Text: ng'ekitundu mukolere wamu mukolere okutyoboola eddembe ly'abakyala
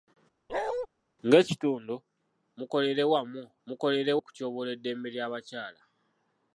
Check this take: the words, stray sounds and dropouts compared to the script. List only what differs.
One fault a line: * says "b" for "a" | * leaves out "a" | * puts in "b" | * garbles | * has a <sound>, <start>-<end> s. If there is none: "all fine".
* has a bark, 0.5-0.9 s